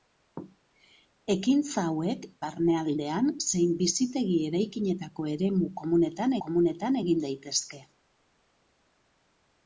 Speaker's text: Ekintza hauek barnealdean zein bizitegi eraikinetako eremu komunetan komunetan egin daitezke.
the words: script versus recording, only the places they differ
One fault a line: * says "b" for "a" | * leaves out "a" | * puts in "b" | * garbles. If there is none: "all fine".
all fine